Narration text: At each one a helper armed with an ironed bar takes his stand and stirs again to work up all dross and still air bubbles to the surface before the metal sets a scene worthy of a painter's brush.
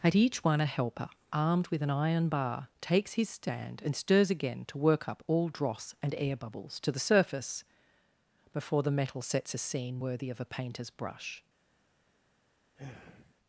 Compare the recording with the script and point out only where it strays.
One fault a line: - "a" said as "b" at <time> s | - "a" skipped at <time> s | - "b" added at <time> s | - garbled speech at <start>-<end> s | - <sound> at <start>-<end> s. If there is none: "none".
- "ironed" said as "iron" at 1.9 s
- "still" skipped at 6.1 s
- sigh at 12.8-13.3 s